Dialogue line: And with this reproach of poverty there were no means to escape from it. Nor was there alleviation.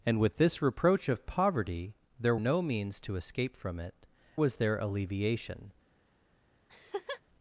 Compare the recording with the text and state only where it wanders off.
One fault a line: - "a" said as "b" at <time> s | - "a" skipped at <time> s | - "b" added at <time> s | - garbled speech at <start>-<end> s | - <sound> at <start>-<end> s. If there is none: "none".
- "were" skipped at 2.4 s
- "Nor" skipped at 3.9 s
- laugh at 6.7-7.2 s